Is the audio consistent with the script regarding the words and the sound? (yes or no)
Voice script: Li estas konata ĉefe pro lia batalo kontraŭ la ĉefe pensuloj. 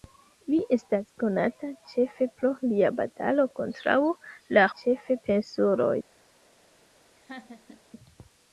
no